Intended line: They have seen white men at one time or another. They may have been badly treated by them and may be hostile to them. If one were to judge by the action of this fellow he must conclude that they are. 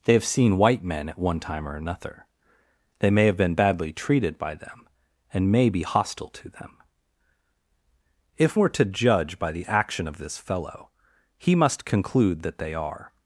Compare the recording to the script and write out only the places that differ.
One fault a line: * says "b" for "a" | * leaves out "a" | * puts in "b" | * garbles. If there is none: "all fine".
* leaves out "one"